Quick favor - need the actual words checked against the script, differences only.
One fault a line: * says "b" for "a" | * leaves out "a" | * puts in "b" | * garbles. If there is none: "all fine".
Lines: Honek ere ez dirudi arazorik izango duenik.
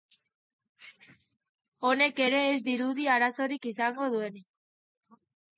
all fine